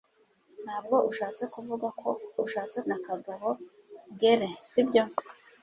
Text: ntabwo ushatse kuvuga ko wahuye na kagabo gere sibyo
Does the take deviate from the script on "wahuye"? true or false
true